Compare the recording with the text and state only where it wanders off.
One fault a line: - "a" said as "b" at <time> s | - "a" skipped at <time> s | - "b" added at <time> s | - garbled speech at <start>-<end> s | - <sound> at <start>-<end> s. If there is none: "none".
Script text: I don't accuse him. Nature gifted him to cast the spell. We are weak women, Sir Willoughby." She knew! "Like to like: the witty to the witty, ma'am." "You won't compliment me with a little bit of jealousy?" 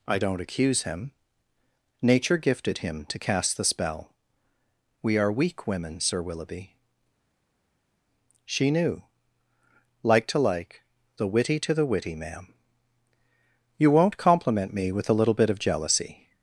none